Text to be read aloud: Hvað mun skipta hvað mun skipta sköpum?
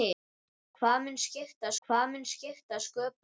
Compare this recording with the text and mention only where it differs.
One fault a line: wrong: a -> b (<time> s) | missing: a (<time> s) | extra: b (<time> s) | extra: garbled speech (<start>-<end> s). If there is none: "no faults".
no faults